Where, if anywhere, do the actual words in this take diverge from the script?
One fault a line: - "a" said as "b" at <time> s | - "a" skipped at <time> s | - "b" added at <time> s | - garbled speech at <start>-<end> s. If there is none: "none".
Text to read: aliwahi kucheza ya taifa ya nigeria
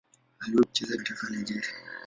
none